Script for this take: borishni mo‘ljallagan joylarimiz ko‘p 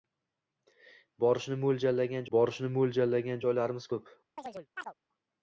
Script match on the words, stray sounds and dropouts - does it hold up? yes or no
no